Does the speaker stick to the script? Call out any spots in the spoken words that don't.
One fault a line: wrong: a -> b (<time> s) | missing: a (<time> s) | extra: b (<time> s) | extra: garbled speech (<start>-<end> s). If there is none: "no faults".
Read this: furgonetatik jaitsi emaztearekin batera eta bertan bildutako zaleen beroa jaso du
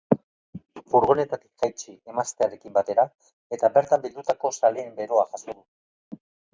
no faults